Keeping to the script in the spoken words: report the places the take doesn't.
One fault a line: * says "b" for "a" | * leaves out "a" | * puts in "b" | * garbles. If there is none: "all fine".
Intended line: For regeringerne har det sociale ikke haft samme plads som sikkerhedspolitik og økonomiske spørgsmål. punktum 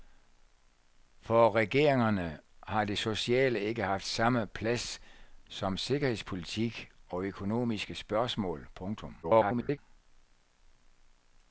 * garbles